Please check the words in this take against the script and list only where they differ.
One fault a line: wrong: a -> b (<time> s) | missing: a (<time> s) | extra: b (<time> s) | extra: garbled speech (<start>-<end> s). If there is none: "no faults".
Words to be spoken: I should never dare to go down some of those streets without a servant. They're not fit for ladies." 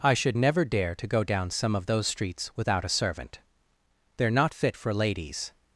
no faults